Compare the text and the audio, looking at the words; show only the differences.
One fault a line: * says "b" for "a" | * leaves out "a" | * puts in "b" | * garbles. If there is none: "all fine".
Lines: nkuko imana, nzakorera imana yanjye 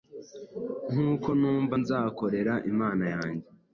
* says "numva" for "imana"